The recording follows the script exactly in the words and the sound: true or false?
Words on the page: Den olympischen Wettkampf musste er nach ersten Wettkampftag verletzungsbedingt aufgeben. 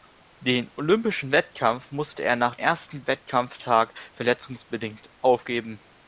true